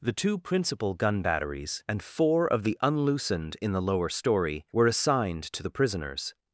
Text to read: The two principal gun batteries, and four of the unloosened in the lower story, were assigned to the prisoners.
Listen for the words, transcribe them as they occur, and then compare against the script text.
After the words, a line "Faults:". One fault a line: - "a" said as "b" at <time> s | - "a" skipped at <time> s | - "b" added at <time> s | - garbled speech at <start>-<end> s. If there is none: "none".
The two principal gun batteries, and four of the unloosened in the lower story, were assigned to the prisoners.
Faults:
none